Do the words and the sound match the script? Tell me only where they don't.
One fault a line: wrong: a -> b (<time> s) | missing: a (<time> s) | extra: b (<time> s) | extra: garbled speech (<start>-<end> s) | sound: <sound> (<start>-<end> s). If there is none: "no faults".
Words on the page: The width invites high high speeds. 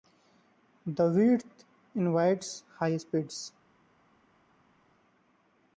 missing: high (3.0 s)